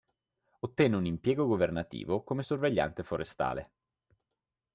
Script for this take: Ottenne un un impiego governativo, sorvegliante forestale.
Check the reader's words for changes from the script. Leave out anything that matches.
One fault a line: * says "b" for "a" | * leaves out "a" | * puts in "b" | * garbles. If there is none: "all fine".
* leaves out "un"
* puts in "come"